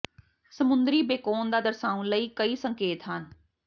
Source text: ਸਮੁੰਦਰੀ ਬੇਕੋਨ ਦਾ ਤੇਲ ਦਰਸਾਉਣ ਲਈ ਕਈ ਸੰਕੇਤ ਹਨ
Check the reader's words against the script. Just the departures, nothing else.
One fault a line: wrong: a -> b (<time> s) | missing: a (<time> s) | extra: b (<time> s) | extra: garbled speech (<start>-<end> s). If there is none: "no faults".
missing: ਤੇਲ (1.6 s)